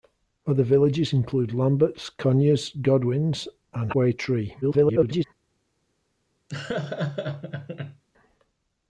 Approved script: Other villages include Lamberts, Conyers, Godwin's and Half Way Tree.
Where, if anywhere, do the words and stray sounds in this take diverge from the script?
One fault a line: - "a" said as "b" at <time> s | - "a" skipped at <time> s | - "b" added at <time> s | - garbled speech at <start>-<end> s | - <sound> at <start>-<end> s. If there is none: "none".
- "Half" skipped at 3.9 s
- garbled speech at 4.6-5.2 s
- laugh at 6.5-8.0 s